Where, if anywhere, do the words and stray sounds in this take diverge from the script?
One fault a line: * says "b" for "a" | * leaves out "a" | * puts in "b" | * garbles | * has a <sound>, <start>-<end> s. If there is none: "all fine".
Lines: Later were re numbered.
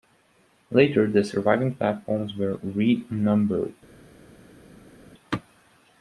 * puts in "the surviving platforms"